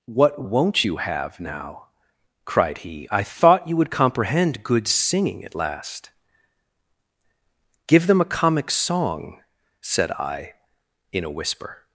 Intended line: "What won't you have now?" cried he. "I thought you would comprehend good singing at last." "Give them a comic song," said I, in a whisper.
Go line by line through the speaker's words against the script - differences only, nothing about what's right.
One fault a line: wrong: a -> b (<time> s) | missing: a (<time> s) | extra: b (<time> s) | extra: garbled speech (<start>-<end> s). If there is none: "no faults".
no faults